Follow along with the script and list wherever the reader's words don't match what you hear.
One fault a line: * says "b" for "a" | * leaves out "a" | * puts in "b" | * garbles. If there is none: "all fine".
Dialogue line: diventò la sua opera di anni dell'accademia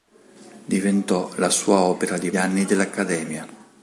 all fine